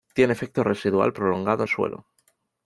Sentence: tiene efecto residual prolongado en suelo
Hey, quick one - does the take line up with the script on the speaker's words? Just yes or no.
yes